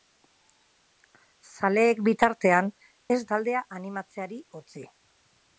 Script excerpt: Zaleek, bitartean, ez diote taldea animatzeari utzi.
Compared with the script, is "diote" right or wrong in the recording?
wrong